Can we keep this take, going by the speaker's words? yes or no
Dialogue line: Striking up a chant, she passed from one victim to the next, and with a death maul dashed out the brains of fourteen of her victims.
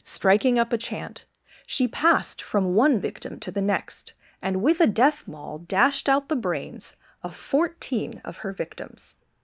yes